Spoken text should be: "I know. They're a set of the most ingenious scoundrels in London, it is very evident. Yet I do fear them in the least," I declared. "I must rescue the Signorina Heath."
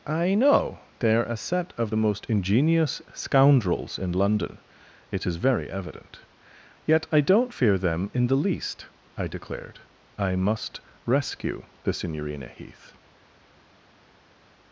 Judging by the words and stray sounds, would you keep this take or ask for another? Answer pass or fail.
fail